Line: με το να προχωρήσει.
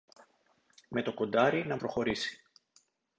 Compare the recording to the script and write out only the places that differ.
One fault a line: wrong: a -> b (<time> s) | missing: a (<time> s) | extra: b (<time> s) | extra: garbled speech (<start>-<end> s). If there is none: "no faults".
extra: κοντάρι (1.1 s)